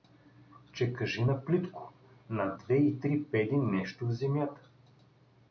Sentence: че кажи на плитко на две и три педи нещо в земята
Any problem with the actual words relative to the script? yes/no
no